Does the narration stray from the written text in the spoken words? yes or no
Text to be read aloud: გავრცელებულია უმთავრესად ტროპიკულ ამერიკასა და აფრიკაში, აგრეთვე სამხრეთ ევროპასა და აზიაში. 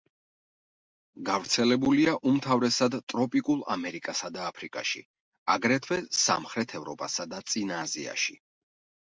yes